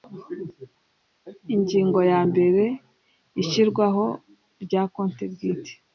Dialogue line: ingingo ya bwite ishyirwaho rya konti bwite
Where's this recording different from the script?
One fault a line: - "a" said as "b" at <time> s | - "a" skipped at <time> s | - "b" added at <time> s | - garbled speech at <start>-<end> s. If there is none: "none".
- "bwite" said as "mbere" at 2.3 s